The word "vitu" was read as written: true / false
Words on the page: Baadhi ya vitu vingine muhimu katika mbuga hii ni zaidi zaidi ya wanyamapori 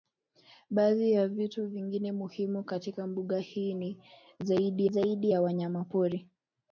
true